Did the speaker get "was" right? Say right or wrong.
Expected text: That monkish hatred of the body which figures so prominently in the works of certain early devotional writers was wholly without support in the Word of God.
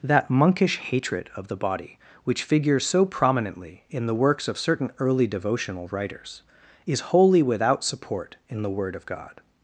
wrong